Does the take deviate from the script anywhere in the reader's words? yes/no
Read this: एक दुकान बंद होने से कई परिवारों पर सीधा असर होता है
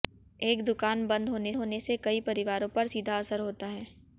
yes